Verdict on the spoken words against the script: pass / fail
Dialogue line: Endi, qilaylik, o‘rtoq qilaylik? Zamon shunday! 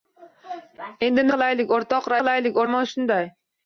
pass